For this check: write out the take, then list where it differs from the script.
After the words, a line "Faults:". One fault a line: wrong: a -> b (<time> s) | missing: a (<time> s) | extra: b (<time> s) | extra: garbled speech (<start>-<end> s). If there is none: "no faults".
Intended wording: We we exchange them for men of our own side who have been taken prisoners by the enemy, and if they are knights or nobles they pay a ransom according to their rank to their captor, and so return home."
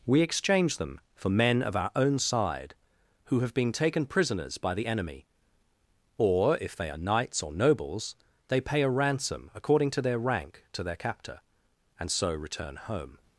We exchange them for men of our own side who have been taken prisoners by the enemy, or if they are knights or nobles they pay a ransom according to their rank to their captor, and so return home."
Faults:
missing: we (0.2 s)
wrong: and -> or (6.2 s)